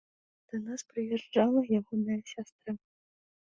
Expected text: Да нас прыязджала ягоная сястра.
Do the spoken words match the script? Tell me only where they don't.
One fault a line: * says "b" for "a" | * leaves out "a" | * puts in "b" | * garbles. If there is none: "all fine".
all fine